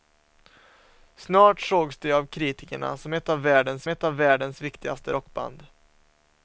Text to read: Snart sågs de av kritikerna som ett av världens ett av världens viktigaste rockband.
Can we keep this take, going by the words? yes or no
yes